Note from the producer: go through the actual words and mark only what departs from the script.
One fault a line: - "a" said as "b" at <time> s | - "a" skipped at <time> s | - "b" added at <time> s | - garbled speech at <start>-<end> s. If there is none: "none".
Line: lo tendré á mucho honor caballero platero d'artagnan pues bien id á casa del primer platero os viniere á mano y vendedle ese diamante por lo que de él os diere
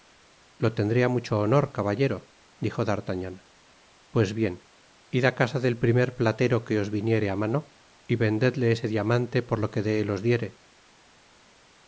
- "platero" said as "dijo" at 2.6 s
- "que" added at 6.7 s